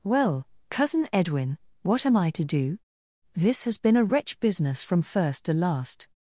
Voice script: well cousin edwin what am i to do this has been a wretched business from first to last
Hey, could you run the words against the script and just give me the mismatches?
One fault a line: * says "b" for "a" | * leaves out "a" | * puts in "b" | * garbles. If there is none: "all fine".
* says "wretch" for "wretched"